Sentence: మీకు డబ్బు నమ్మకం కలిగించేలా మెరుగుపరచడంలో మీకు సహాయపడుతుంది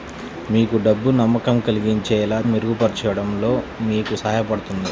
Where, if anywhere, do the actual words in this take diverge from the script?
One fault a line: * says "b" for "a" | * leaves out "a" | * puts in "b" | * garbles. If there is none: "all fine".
all fine